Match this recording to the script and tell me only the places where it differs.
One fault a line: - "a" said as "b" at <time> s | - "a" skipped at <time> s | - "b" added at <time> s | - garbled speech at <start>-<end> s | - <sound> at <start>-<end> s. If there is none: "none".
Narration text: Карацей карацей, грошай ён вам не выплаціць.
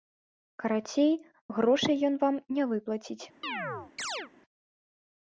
- "карацей" skipped at 1.1 s
- chirp at 3.4-4.3 s